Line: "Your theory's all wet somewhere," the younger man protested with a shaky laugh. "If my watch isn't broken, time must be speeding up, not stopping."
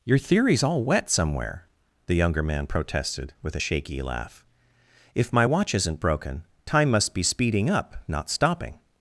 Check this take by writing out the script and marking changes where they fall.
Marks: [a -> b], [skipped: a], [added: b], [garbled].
"Your theory's all wet somewhere," the younger man protested with a shaky laugh. "If my watch isn't broken, time must be speeding up, not stopping."